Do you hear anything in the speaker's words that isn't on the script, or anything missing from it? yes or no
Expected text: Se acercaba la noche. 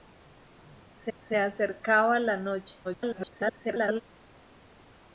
yes